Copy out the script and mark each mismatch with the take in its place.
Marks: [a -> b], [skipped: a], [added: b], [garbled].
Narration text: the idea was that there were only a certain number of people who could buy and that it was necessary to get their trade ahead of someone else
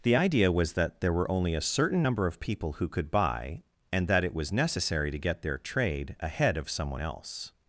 the idea was that there were only a certain number of people who could buy and that it was necessary to get their trade ahead of someone else